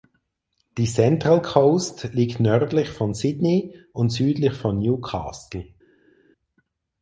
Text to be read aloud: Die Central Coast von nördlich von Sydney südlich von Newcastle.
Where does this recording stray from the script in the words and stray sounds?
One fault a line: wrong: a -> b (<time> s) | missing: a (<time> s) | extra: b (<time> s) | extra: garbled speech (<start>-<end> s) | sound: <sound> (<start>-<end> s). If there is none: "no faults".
wrong: von -> liegt (2.1 s)
extra: und (3.9 s)